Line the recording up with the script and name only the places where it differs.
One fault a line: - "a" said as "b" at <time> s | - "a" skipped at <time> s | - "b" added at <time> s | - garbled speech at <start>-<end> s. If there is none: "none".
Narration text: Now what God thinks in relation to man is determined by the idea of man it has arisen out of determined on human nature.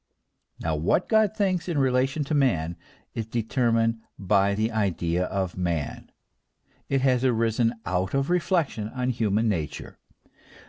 - "determined" said as "reflection" at 8.3 s